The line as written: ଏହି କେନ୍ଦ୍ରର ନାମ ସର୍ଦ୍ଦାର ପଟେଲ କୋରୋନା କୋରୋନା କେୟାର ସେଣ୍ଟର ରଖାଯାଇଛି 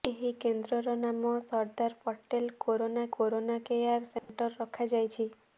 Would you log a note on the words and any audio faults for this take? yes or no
yes